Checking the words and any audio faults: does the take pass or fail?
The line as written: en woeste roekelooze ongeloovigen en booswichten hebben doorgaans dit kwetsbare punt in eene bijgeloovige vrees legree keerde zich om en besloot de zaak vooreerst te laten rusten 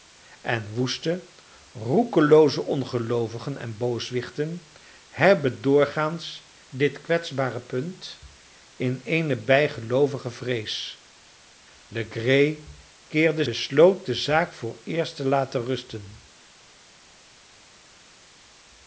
fail